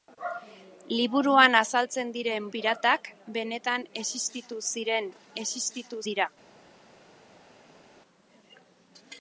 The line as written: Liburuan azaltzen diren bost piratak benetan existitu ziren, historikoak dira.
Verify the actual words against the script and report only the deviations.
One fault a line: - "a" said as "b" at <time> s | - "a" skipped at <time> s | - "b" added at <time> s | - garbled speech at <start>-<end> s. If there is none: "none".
- "bost" skipped at 2.5 s
- "historikoak" said as "existitu" at 5.4 s